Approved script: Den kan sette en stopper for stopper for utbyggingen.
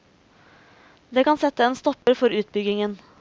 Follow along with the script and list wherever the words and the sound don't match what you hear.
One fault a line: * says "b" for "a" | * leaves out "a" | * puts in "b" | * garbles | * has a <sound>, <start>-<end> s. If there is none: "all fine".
* says "Det" for "Den"
* has a dropout, 2.0-2.1 s
* leaves out "stopper for"